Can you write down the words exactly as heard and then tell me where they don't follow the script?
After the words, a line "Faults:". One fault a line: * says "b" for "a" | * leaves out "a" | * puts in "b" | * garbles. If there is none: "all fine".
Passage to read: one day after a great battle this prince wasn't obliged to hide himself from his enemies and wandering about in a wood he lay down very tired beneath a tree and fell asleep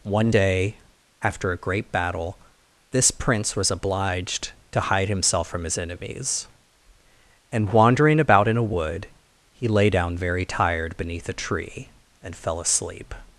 one day after a great battle this prince was obliged to hide himself from his enemies and wandering about in a wood he lay down very tired beneath a tree and fell asleep
Faults:
* says "was" for "wasn't"